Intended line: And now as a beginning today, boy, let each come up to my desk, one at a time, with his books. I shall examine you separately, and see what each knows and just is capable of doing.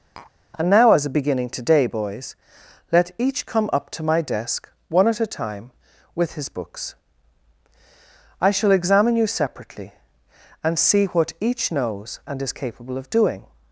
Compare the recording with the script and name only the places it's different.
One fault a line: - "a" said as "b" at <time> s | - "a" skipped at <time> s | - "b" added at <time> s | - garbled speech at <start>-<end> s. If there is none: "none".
- "boy" said as "boys" at 1.9 s
- "just" skipped at 12.4 s